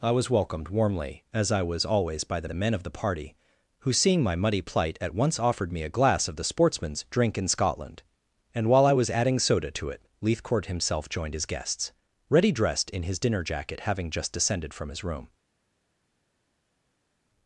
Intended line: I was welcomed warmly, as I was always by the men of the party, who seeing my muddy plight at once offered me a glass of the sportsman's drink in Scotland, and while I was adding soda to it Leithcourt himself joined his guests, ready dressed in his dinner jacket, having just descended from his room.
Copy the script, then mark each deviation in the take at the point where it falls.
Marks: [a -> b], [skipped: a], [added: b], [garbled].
I was welcomed warmly, as I was always by the [added: the] men of the party, who seeing my muddy plight at once offered me a glass of the sportsman's drink in Scotland, and while I was adding soda to it Leithcourt himself joined his guests, ready dressed in his dinner jacket, having just descended from his room.